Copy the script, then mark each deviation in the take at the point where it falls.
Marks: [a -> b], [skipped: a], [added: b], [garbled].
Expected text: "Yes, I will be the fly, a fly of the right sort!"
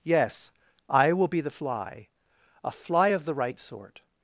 "Yes, I will be the fly, a fly of the right sort!"